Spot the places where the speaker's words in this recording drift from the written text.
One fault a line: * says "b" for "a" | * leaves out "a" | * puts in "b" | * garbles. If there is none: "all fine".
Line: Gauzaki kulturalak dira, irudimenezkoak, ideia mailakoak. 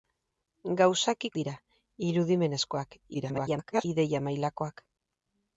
* leaves out "kulturalak"
* garbles